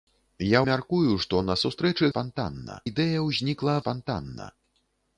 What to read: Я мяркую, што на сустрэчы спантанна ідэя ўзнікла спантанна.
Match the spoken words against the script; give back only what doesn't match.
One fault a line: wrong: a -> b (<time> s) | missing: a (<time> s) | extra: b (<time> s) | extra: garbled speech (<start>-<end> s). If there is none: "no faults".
no faults